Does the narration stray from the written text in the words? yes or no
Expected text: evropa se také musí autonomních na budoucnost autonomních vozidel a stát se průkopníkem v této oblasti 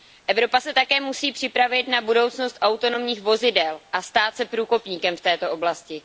yes